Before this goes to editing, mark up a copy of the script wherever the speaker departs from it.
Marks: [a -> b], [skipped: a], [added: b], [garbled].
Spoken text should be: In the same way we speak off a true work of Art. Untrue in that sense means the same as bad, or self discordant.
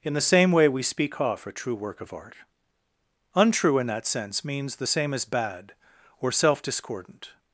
In the same way we speak off a true work of Art. Untrue in that sense means the same as bad, or self discordant.